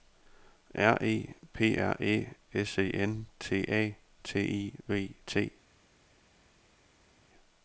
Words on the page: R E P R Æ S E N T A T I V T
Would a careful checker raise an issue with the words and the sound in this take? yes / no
no